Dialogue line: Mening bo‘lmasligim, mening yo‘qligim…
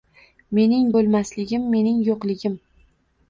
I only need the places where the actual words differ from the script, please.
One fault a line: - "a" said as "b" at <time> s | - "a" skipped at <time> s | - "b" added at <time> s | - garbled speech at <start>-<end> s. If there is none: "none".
none